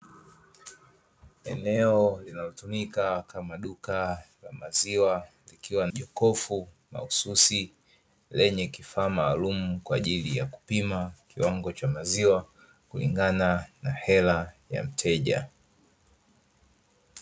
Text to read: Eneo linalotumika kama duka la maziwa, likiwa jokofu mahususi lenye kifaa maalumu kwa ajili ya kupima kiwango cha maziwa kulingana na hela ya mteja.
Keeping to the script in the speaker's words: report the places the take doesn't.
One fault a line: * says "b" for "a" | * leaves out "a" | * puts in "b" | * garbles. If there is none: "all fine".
all fine